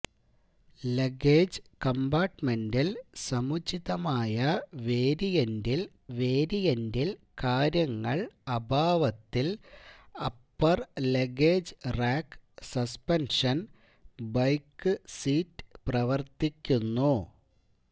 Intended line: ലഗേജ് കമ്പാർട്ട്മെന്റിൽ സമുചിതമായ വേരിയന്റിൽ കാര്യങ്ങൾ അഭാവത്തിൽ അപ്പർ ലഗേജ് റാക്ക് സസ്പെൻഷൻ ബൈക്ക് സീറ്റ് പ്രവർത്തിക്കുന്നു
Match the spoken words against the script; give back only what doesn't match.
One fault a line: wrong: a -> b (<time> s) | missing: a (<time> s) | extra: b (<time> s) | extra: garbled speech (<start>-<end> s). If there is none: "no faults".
extra: വേരിയന്റിൽ (6.2 s)